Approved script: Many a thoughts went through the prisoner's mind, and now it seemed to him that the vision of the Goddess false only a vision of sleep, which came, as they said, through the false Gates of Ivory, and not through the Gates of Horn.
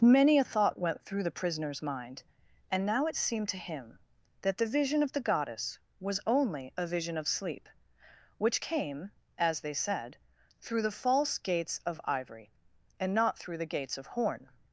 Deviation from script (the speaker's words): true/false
true